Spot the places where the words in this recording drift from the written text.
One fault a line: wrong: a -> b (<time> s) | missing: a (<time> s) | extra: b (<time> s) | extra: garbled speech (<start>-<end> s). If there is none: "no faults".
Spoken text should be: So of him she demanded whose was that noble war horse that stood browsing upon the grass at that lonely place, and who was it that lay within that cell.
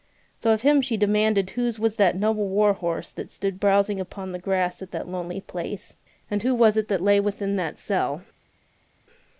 no faults